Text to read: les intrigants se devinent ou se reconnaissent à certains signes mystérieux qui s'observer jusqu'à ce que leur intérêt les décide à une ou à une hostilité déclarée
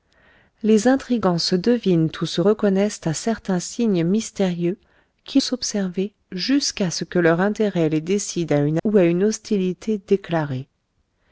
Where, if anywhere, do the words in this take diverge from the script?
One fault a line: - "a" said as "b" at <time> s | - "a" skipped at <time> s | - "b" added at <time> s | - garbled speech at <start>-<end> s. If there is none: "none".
none